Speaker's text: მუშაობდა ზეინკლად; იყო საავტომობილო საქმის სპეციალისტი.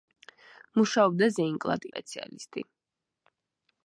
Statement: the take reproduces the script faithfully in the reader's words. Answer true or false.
false